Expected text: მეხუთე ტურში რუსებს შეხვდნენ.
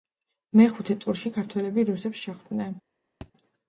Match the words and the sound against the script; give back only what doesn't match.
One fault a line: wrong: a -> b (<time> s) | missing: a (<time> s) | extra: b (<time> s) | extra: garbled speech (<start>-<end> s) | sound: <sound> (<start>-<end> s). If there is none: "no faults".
extra: ქართველები (1.3 s)
sound: thud (3.2-3.3 s)